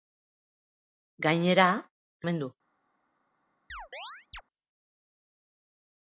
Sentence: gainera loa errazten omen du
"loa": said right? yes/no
no